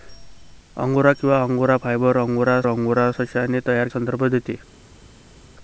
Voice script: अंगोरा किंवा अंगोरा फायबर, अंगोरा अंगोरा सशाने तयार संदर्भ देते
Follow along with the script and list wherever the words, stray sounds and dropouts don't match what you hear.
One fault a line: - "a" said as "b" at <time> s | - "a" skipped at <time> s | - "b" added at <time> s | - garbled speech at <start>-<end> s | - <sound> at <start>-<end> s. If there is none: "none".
none